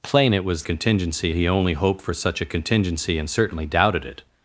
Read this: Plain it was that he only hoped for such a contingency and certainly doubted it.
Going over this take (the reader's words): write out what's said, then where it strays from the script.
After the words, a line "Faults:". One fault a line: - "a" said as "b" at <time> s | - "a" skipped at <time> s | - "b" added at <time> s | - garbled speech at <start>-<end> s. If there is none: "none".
Plain it was contingency he only hoped for such a contingency and certainly doubted it.
Faults:
- "that" said as "contingency" at 0.6 s